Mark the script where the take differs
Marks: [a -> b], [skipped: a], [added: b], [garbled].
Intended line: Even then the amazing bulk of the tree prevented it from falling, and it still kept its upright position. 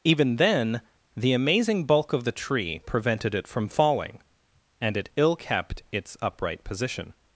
Even then the amazing bulk of the tree prevented it from falling, and it [still -> ill] kept its upright position.